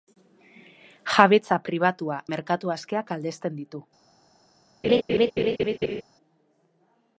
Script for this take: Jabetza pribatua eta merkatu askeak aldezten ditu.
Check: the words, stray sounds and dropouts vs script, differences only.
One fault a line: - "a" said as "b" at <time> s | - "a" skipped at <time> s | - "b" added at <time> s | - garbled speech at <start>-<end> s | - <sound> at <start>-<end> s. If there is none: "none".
- "eta" skipped at 2.2 s
- laugh at 4.8-6.0 s